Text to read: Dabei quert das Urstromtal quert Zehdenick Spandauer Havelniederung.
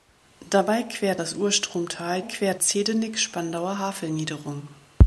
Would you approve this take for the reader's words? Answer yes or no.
yes